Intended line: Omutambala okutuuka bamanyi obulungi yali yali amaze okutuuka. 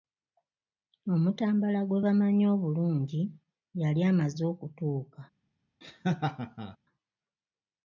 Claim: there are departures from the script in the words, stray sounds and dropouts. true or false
true